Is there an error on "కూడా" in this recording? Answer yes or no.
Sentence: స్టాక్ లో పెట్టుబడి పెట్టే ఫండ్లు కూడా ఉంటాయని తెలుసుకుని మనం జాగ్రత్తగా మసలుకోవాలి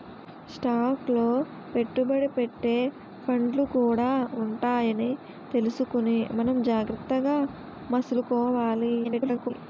no